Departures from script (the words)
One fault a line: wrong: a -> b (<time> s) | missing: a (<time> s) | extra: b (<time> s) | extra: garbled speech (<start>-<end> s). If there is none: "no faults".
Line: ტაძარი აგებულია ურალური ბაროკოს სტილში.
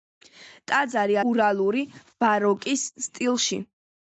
missing: აგებულია (1.2 s)